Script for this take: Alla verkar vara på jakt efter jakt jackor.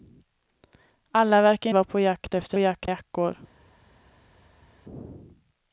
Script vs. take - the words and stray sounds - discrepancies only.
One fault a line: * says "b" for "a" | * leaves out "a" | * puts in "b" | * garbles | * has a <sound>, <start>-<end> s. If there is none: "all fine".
all fine